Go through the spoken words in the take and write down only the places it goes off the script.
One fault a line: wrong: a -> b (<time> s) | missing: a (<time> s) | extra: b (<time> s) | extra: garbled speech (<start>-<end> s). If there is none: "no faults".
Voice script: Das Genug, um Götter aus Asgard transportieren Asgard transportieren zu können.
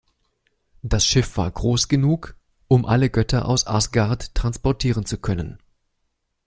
extra: Schiff war groß (1.1 s)
extra: alle (2.8 s)
missing: Asgard transportieren (5.0 s)